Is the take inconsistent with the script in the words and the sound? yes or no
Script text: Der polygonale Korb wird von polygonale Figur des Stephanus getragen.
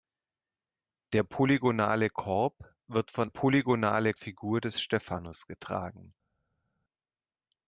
no